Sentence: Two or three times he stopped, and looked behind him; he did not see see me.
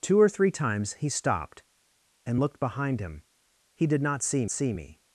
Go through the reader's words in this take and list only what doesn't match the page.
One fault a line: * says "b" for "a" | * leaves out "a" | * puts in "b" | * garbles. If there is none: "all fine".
all fine